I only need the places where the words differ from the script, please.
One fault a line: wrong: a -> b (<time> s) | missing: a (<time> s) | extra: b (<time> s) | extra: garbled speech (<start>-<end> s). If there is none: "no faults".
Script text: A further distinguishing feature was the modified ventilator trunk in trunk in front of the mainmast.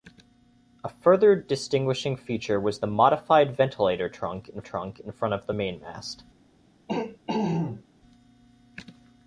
no faults